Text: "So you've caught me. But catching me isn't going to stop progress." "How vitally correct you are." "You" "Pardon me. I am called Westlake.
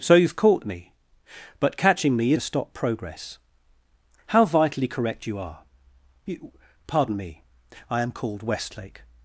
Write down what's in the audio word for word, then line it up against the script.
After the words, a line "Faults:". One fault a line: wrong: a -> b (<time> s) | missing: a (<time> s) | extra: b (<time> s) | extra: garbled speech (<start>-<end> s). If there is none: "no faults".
"So you've caught me. But catching me to stop progress." "How vitally correct you are." "You" "Pardon me. I am called Westlake.
Faults:
missing: isn't going (2.3 s)